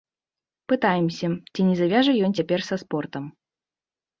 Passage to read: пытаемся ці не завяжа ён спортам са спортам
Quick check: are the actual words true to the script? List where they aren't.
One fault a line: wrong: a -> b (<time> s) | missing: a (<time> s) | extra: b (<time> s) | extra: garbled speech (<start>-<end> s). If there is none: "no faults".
wrong: спортам -> цяпер (2.4 s)